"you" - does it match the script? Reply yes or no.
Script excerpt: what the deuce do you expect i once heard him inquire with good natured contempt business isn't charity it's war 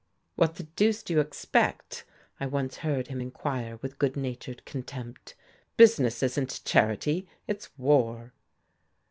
yes